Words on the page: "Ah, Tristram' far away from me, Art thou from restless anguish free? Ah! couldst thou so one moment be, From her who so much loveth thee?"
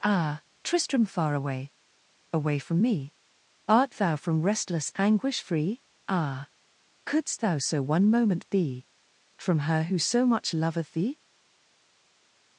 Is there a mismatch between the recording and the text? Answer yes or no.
yes